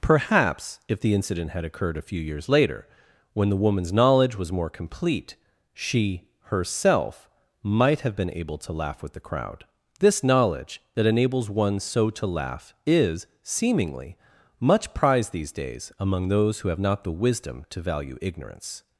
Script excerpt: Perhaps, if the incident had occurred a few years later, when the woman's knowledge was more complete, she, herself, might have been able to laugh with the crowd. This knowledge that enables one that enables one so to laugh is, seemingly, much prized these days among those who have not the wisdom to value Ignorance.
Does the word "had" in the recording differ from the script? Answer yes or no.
no